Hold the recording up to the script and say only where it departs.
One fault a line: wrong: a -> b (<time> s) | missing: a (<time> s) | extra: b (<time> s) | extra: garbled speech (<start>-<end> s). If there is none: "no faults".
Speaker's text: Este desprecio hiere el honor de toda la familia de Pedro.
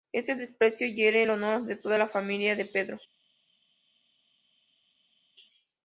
no faults